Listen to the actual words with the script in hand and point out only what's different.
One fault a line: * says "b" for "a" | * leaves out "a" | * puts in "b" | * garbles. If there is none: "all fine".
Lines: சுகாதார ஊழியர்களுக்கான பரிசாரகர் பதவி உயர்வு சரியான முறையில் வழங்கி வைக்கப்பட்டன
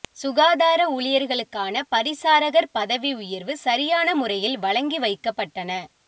all fine